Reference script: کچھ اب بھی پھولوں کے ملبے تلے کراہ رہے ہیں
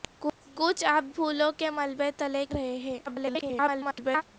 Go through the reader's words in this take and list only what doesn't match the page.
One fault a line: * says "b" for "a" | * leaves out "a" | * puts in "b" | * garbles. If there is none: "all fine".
* leaves out "بھی"
* leaves out "کراہ"
* garbles